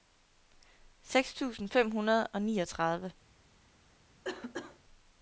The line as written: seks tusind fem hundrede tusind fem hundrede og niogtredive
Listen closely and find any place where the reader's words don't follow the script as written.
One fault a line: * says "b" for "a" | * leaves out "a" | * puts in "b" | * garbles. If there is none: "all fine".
* leaves out "tusind fem hundrede"